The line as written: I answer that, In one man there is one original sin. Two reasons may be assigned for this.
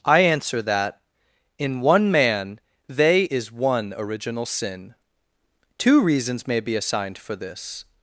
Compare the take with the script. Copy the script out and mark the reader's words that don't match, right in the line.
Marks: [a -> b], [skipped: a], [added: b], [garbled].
I answer that, In one man [there -> they] is one original sin. Two reasons may be assigned for this.